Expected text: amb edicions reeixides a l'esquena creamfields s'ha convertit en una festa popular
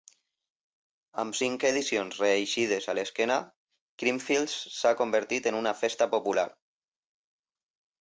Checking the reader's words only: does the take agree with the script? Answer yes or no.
no